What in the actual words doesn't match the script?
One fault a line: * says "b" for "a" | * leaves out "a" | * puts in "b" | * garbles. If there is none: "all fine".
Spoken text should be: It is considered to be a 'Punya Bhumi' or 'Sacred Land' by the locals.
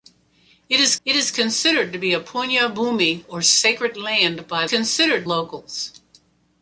* puts in "it is"
* says "considered" for "the"